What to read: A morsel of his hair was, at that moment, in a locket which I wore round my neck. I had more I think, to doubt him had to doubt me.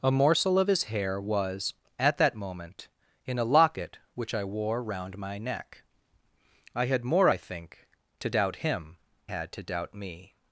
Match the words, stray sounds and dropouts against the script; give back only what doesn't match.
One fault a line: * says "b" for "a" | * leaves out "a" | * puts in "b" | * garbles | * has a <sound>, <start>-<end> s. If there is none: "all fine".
all fine